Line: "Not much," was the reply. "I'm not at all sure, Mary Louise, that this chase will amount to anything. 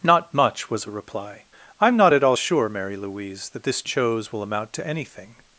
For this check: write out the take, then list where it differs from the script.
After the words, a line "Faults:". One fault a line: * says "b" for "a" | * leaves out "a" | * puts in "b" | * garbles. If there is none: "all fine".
"Not much," was a reply. "I'm not at all sure, Mary Louise, that this chose will amount to anything.
Faults:
* says "a" for "the"
* says "chose" for "chase"